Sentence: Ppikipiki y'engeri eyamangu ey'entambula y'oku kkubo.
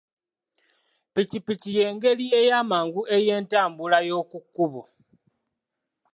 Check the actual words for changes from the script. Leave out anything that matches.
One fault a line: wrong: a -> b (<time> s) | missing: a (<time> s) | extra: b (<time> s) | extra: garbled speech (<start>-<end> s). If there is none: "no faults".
no faults